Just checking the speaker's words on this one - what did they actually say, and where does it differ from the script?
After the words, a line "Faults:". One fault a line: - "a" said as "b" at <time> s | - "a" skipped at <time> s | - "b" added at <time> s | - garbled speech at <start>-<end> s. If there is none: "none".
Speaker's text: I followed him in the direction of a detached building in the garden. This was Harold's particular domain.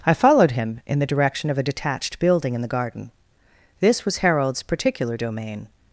I followed him in the direction of a detached building in the garden. This was Harold's particular domain.
Faults:
none